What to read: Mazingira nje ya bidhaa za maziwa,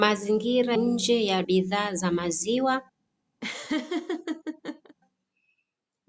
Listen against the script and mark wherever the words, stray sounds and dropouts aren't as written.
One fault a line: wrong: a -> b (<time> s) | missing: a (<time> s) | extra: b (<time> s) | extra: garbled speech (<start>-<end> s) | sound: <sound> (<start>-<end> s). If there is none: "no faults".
sound: laugh (3.4-5.0 s)